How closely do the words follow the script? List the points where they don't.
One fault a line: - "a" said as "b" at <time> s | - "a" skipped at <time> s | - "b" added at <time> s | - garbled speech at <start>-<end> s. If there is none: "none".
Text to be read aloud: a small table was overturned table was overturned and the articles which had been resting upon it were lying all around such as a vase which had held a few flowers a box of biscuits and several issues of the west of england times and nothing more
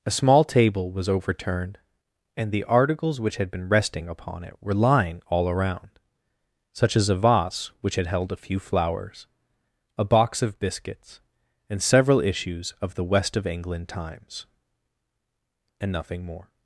- "table was overturned" skipped at 1.8 s